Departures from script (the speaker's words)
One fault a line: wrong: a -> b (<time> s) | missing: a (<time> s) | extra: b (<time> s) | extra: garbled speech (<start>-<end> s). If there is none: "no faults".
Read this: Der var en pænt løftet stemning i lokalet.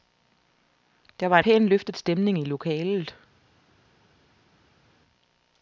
missing: en (1.4 s)